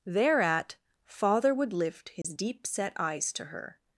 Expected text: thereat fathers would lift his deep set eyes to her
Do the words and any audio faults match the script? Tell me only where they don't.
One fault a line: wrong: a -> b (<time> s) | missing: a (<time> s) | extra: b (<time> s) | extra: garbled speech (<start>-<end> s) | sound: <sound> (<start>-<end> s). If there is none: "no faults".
wrong: fathers -> father (1.1 s)
sound: dropout (2.2-2.2 s)